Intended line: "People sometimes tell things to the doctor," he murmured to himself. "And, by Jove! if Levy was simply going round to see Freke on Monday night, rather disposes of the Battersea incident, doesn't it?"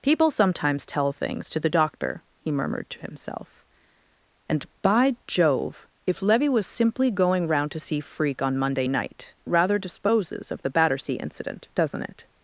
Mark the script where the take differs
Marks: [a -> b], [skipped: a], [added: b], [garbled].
"People sometimes tell things to the doctor," he murmured to himself. "And, by Jove! if Levy was simply going round to see Freke on Monday night, rather disposes of the Battersea incident, doesn't it?"